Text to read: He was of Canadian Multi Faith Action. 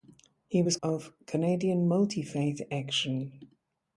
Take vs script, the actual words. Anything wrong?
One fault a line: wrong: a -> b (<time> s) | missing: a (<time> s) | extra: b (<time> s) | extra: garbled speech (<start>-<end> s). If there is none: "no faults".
no faults